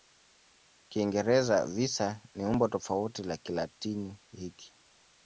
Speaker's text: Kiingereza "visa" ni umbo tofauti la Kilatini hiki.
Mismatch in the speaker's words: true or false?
false